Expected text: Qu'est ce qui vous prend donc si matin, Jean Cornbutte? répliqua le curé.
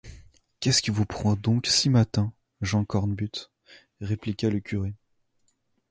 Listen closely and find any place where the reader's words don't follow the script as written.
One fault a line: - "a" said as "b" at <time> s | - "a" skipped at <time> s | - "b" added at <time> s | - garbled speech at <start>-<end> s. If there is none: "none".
none